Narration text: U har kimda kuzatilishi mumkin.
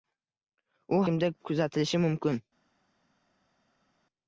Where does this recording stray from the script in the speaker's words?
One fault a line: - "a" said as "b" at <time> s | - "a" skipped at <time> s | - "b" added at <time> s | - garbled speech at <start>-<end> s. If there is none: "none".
- "har" skipped at 1.0 s